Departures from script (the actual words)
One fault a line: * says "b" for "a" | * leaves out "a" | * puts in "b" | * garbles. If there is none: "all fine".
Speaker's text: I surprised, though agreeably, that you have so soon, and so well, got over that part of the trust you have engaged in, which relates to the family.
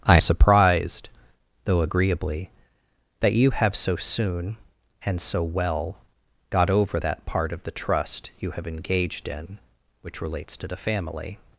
all fine